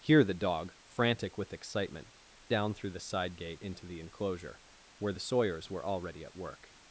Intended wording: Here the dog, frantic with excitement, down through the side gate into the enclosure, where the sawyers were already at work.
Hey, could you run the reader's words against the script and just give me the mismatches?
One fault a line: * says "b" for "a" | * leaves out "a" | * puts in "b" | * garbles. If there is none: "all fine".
all fine